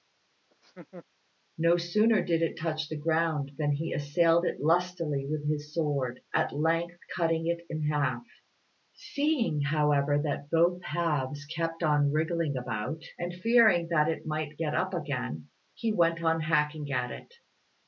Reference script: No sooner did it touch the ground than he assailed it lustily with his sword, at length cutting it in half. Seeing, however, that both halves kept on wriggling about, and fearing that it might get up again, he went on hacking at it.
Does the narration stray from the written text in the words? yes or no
no